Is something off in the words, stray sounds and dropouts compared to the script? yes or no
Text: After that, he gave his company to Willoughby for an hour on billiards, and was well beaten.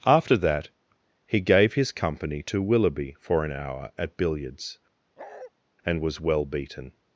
yes